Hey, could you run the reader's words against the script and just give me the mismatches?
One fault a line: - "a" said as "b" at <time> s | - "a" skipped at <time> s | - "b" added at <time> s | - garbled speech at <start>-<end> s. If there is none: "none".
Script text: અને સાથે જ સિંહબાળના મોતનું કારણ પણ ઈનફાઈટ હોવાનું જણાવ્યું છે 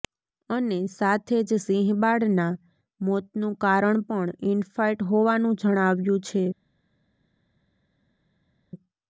none